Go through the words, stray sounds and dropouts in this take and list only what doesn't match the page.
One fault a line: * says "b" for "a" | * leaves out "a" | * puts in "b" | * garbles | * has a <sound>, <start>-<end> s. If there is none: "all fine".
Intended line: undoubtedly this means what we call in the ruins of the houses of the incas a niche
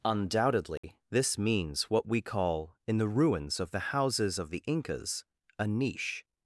* has a dropout, 0.8-0.8 s